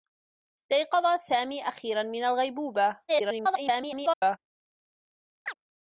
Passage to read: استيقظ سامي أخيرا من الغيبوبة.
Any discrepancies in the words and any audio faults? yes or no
yes